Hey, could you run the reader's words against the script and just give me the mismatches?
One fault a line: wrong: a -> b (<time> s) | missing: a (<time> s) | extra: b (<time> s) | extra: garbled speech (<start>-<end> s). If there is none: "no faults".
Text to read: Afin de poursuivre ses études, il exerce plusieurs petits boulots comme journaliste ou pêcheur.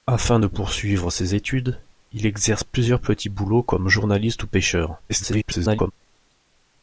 extra: garbled speech (5.1-5.9 s)